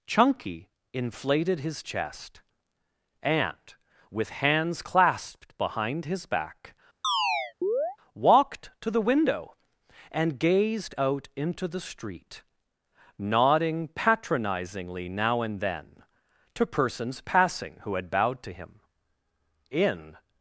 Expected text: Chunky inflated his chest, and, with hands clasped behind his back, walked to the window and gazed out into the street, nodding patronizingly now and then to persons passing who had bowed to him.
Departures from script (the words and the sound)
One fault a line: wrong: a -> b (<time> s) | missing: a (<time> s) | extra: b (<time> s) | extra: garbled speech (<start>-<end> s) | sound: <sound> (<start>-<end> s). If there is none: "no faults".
sound: chirp (7.0-8.0 s)
extra: In (19.7 s)